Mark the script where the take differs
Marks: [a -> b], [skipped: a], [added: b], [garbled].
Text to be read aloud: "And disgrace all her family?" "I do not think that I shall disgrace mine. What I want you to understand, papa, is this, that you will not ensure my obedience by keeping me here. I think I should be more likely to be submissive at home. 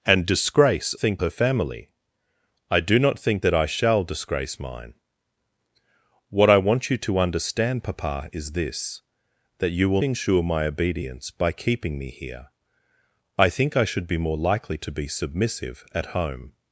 "And disgrace [all -> think] her family?" "I do not think that I shall disgrace mine. What I want you to understand, papa, is this, that you will [skipped: not] ensure my obedience by keeping me here. I think I should be more likely to be submissive at home.